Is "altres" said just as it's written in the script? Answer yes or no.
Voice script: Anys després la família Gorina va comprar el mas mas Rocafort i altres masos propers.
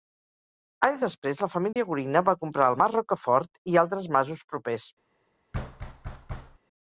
yes